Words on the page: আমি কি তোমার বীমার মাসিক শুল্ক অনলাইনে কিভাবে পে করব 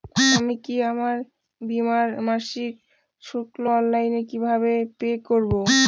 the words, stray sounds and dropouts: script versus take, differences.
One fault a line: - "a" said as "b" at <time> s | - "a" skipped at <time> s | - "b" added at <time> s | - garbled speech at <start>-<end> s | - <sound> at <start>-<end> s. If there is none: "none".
- "তোমার" said as "আমার" at 0.9 s